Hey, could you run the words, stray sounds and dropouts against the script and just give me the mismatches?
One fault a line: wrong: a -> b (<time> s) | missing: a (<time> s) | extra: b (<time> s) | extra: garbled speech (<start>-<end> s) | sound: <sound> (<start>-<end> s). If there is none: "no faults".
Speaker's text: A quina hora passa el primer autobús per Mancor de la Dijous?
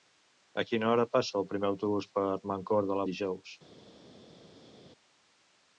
no faults